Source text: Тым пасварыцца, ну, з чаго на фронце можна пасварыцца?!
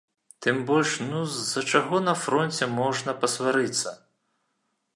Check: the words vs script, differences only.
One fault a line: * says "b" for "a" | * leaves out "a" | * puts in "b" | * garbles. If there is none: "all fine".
* says "больш" for "пасварыцца"
* puts in "за"